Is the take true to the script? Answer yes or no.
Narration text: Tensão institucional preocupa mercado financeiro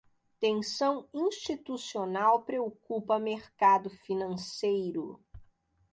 yes